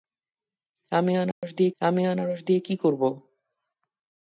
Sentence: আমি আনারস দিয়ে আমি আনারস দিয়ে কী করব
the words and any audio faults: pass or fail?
fail